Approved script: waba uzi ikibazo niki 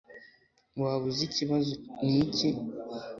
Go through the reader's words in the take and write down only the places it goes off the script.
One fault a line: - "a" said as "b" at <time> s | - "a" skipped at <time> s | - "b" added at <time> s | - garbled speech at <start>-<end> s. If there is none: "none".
none